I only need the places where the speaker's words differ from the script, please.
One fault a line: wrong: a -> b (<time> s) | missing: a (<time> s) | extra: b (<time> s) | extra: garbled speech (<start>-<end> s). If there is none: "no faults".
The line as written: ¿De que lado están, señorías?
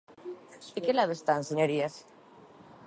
no faults